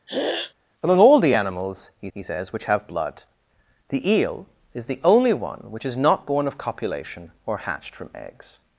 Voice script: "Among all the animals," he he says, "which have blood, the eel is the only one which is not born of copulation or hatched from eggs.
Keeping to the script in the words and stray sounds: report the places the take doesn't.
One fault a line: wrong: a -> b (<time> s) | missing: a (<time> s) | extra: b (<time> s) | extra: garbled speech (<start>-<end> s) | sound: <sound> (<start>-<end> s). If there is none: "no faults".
sound: throat clearing (0.1-0.5 s)